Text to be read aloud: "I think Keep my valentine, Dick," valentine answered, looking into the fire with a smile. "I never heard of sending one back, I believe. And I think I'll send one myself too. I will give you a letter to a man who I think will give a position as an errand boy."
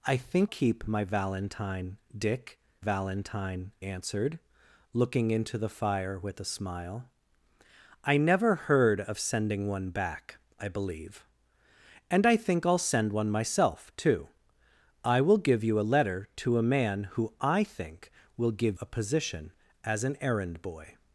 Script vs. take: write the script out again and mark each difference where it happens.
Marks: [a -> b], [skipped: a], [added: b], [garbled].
"I think Keep my valentine, Dick," valentine answered, looking into the fire with a smile. "I never heard of sending one back, I believe. And I think I'll send one myself too. I will give you a letter to a man who I think will give a position as an errand boy."